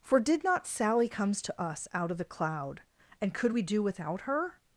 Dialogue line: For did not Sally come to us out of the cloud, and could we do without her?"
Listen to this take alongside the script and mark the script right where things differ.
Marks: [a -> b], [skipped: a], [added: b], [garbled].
For did not Sally [come -> comes] to us out of the cloud, and could we do without her?"